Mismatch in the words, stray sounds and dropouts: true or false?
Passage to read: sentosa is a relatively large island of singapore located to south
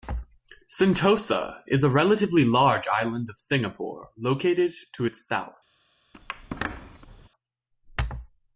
true